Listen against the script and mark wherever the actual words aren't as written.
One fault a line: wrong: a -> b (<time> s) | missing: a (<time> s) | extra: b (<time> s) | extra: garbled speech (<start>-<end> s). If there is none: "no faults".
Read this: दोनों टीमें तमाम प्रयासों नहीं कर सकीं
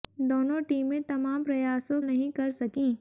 no faults